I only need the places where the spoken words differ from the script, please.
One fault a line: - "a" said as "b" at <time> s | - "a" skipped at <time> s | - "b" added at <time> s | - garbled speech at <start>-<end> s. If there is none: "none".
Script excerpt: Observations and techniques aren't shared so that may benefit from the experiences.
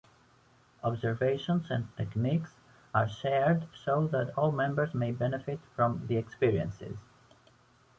- "aren't" said as "are" at 2.9 s
- "all members" added at 4.3 s